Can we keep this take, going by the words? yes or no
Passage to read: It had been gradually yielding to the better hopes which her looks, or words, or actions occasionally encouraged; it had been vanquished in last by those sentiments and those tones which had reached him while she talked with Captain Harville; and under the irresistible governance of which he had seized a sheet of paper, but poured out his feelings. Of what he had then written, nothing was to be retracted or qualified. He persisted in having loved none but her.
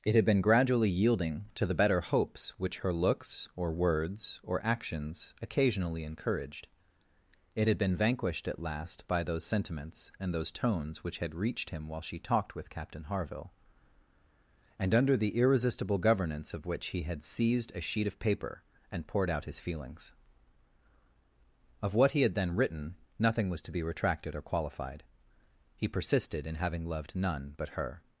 no